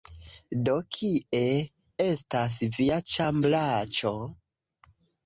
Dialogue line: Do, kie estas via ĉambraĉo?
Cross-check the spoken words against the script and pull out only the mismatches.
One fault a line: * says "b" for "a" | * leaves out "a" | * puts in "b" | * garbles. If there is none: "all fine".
all fine